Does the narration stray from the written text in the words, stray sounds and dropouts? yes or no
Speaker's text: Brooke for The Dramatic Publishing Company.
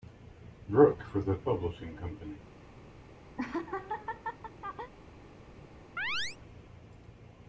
yes